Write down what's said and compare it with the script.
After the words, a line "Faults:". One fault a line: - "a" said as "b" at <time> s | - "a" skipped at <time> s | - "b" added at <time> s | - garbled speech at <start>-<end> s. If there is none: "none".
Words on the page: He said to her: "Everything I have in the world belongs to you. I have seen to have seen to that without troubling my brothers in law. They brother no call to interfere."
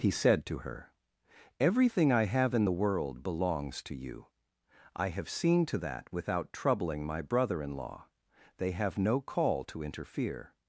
He said to her: "Everything I have in the world belongs to you. I have seen to that without troubling my brother in law. They have no call to interfere."
Faults:
- "have seen to" skipped at 5.8 s
- "brothers" said as "brother" at 7.2 s
- "brother" said as "have" at 8.7 s